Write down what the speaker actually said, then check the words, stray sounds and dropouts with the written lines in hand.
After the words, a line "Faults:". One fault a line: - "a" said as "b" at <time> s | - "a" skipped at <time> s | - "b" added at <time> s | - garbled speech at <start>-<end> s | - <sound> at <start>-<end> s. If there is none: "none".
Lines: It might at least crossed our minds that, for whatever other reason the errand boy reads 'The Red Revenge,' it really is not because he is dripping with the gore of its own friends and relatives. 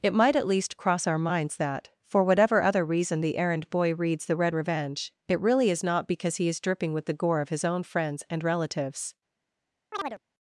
It might at least cross our minds that, for whatever other reason the errand boy reads 'The Red Revenge,' it really is not because he is dripping with the gore of his own friends and relatives.
Faults:
- "crossed" said as "cross" at 0.8 s
- "its" said as "his" at 7.5 s
- chirp at 9.9-10.2 s